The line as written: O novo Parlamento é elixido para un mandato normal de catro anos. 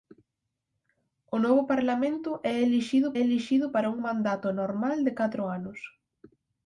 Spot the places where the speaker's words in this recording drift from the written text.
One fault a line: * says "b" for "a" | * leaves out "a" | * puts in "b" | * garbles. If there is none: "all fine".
* puts in "elixido"